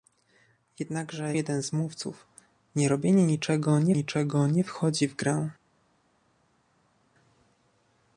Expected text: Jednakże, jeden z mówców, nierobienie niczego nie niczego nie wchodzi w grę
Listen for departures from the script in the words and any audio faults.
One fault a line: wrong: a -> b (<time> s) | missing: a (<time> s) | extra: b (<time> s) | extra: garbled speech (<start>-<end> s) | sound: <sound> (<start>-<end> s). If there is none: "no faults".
no faults